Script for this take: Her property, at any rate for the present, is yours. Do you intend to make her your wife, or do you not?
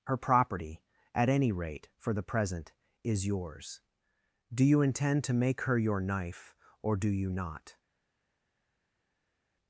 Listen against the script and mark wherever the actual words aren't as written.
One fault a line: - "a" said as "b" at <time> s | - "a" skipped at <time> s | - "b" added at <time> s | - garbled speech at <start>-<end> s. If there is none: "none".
- "wife" said as "knife" at 6.0 s